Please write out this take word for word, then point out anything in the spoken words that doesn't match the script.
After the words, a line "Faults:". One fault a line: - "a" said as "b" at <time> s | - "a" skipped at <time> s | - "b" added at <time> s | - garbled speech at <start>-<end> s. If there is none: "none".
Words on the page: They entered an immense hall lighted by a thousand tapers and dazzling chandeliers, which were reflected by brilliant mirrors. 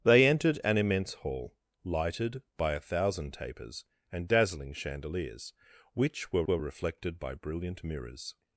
They entered an immense hall lighted by a thousand tapers and dazzling chandeliers, which were were reflected by brilliant mirrors.
Faults:
- "were" added at 6.5 s